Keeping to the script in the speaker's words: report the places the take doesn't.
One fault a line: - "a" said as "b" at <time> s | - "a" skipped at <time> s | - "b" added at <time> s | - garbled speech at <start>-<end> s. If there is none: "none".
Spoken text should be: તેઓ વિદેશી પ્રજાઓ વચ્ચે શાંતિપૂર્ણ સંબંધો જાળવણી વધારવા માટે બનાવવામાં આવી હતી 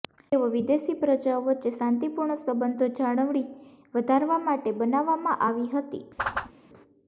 none